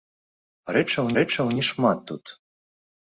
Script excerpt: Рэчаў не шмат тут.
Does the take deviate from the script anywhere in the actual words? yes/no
yes